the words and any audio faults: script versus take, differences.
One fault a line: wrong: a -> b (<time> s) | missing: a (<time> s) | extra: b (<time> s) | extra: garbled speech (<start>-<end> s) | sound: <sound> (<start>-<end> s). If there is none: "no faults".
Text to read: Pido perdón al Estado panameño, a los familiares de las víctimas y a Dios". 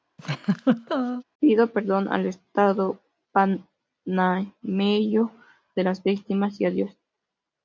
sound: laugh (0.2-1.2 s)
missing: a los familiares (5.4 s)